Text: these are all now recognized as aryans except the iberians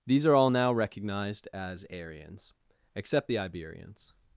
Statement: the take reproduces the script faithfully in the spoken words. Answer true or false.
true